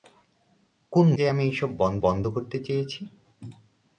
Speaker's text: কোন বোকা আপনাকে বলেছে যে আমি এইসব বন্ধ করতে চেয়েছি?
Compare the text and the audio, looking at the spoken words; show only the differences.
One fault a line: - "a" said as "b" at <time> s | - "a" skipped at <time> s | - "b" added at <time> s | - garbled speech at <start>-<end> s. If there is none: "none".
- "বোকা আপনাকে বলেছে" skipped at 1.1 s
- "বন্ধ" added at 2.0 s